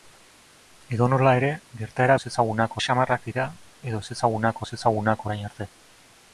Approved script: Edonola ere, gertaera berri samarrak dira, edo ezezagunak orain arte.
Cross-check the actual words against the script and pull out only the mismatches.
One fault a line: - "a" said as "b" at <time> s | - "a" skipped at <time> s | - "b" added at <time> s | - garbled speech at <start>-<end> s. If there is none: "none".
- "berri" said as "ezezagunak" at 2.2 s
- "ezezagunak" added at 4.7 s